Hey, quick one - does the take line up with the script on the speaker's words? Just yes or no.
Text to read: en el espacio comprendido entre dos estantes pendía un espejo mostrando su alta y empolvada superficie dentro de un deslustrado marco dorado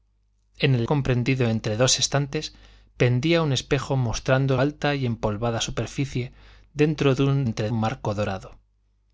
no